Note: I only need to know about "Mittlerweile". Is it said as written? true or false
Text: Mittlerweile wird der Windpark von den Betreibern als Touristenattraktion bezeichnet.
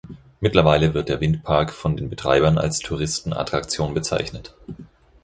true